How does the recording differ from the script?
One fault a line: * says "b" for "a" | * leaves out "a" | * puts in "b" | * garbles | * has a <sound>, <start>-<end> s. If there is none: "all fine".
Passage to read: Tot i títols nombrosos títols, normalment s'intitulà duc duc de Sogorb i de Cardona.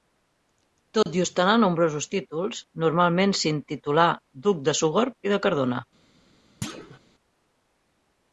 * has a dropout, 1.0-1.1 s
* says "ostentar" for "títols"
* leaves out "duc"
* has a thud, 6.6-7.0 s